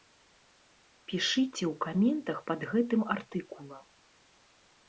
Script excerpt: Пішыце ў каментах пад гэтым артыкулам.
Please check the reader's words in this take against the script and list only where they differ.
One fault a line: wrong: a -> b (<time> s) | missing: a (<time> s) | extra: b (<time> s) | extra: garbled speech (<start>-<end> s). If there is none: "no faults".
no faults